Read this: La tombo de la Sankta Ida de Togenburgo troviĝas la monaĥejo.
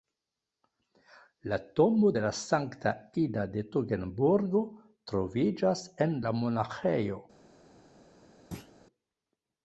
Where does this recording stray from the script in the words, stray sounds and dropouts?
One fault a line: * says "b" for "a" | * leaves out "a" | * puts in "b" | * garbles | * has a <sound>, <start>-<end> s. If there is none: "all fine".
* puts in "en"
* has a thud, 8.5-8.7 s